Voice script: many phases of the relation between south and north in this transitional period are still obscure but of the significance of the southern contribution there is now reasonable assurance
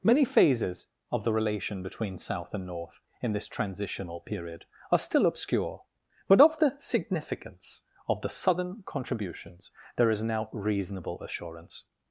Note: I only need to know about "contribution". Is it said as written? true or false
false